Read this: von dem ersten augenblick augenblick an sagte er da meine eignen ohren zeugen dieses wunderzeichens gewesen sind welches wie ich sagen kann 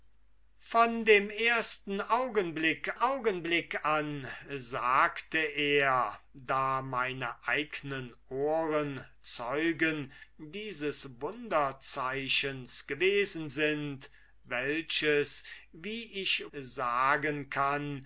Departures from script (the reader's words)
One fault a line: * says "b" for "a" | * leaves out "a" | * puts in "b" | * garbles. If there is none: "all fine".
all fine